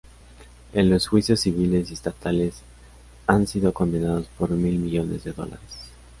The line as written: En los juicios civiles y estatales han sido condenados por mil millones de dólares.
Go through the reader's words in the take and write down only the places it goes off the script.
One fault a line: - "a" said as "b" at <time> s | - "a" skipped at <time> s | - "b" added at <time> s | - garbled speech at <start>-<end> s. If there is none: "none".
none